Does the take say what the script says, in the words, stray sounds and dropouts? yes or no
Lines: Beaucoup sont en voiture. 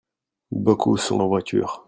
yes